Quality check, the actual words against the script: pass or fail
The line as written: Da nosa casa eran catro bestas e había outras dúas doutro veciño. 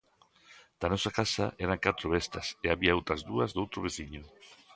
pass